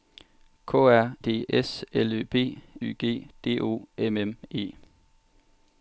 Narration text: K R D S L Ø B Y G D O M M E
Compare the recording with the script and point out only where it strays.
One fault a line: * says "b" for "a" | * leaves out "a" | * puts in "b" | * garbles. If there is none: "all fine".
all fine